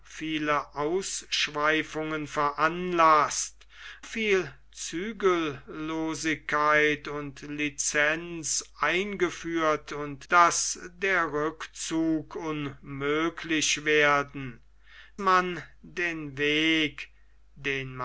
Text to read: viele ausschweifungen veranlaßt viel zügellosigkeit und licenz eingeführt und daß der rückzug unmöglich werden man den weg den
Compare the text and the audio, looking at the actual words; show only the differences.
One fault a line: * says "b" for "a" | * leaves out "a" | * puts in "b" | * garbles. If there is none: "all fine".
all fine